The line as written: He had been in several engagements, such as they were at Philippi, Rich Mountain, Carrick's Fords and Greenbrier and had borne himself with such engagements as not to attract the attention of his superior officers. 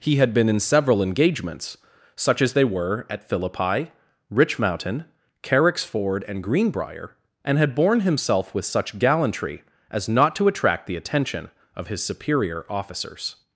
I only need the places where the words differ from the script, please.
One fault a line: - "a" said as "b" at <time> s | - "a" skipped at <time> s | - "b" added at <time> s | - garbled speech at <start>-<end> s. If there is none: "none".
- "Fords" said as "Ford" at 5.8 s
- "engagements" said as "gallantry" at 9.0 s